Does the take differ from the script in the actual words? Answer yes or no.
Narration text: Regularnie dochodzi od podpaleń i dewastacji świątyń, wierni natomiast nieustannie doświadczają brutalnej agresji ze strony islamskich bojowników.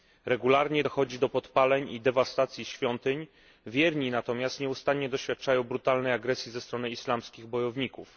yes